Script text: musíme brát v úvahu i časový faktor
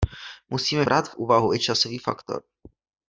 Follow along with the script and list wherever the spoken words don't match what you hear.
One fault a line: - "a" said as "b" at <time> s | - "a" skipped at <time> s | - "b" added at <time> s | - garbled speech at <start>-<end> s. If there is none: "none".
none